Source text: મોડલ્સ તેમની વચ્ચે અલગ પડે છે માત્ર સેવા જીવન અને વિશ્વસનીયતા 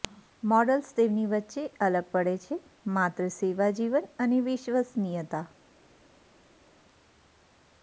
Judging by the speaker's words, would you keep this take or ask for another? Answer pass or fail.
pass